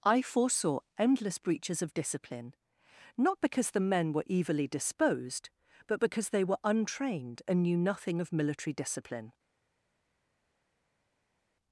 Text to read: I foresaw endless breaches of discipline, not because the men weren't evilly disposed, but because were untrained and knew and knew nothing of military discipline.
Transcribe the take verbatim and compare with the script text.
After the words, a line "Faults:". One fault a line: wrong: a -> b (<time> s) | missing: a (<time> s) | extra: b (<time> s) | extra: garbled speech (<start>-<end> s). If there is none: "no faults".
I foresaw endless breaches of discipline, not because the men were evilly disposed, but because they were untrained and knew nothing of military discipline.
Faults:
wrong: weren't -> were (4.1 s)
extra: they (6.3 s)
missing: and knew (7.8 s)